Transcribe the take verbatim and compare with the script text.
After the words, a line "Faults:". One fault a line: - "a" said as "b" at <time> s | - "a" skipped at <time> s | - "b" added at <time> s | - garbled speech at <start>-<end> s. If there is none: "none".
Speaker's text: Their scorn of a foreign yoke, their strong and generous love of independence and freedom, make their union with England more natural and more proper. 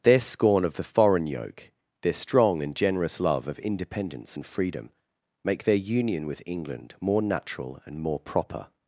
Their scorn of the foreign yoke, their strong and generous love of independence and freedom, make their union with England more natural and more proper.
Faults:
- "a" said as "the" at 0.8 s